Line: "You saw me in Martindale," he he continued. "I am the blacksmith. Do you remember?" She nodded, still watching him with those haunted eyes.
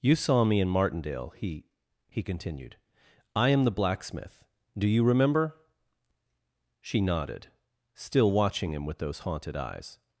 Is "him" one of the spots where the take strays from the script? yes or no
no